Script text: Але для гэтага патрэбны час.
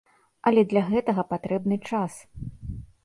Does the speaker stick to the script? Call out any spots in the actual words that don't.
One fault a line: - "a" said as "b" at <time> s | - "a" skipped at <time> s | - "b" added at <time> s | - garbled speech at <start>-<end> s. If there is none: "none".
none